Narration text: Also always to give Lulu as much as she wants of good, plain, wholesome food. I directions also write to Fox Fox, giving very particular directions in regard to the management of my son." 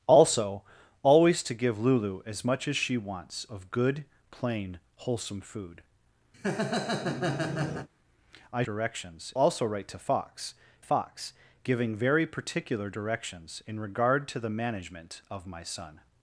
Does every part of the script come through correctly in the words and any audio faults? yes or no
no